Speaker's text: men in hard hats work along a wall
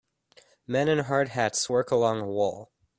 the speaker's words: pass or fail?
pass